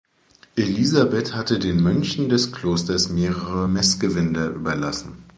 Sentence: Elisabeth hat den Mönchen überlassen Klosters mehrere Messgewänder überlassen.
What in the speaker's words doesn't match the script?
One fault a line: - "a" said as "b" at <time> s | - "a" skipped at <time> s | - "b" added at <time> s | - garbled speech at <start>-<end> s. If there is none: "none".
- "hat" said as "hatte" at 1.4 s
- "überlassen" said as "des" at 2.3 s